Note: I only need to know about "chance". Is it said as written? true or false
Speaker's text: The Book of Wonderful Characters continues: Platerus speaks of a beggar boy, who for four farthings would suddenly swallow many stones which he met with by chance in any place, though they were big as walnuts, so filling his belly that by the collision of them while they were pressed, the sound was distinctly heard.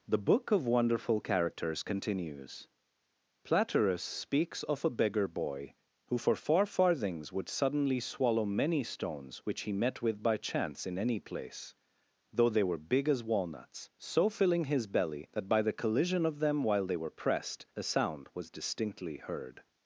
true